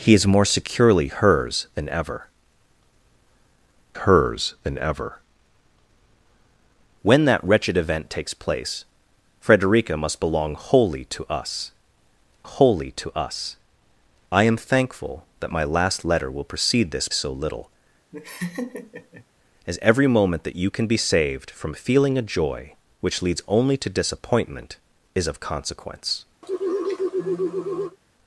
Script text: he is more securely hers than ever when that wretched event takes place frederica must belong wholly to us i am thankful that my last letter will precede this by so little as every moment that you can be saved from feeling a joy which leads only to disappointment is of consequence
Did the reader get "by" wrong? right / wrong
wrong